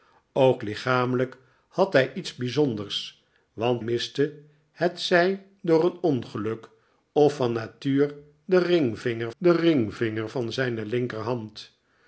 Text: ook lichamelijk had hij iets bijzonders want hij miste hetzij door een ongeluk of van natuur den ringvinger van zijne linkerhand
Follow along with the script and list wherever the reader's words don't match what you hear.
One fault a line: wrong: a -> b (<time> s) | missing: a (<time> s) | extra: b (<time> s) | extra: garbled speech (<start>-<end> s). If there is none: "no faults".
missing: hij (3.8 s)
extra: den ringvinger (9.4 s)